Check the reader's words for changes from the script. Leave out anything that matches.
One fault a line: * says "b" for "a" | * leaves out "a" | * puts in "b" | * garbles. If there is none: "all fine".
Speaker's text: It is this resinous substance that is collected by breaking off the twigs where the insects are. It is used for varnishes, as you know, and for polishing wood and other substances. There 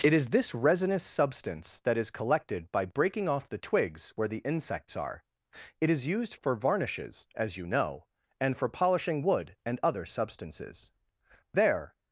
all fine